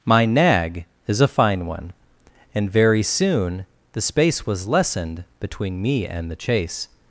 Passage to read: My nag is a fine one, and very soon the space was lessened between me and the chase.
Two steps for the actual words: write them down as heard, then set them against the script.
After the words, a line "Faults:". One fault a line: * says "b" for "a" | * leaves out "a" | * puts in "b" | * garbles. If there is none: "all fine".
My nag is a fine one, and very soon the space was lessened between me and the chase.
Faults:
all fine